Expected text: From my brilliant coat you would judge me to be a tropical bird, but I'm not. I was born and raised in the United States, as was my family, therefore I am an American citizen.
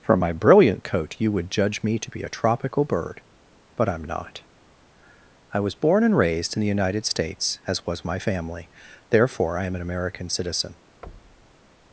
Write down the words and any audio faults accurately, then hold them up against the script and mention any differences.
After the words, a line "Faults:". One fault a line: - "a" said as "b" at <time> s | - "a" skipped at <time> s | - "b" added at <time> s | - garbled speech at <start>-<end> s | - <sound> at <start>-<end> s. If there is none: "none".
From my brilliant coat you would judge me to be a tropical bird, but I'm not. I was born and raised in the United States, as was my family, therefore I am an American citizen.
Faults:
- thud at 11.0-11.6 s